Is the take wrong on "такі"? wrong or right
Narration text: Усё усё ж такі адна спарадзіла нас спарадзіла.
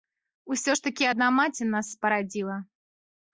right